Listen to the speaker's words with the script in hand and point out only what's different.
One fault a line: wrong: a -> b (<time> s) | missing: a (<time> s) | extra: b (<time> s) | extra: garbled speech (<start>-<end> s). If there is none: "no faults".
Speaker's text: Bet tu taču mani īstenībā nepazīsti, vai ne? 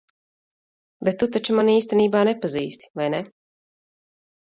no faults